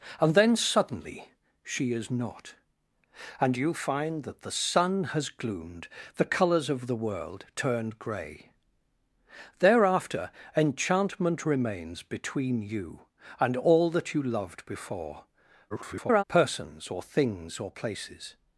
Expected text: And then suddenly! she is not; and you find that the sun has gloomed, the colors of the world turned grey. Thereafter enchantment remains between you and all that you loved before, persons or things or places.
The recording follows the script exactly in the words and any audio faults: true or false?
false